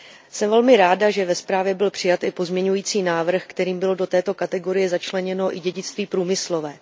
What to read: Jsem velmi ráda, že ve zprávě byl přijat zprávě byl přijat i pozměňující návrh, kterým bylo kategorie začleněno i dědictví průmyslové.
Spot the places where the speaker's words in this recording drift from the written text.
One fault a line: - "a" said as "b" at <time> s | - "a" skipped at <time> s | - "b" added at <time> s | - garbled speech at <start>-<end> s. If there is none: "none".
- "zprávě byl přijat" skipped at 2.2 s
- "do této" added at 4.0 s